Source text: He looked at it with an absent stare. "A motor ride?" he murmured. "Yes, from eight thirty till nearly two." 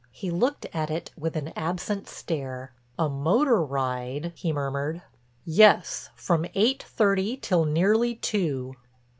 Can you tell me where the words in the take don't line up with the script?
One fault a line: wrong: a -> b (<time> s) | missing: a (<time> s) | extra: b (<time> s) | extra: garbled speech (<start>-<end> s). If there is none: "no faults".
no faults